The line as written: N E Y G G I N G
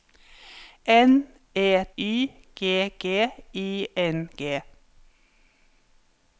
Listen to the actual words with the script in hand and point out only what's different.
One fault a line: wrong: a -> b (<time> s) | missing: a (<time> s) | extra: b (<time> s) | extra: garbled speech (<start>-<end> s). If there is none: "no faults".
no faults